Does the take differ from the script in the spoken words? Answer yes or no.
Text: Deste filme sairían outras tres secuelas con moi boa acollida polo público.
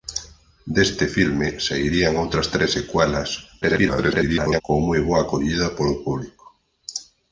yes